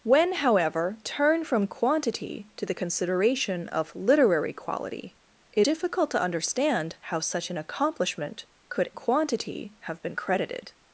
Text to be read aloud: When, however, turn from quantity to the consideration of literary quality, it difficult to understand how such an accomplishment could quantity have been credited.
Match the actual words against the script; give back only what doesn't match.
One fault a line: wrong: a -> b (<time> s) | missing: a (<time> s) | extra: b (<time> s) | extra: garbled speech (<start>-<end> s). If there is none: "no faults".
no faults